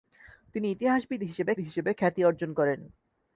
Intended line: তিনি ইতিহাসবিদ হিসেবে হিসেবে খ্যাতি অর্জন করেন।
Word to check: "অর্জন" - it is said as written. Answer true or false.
true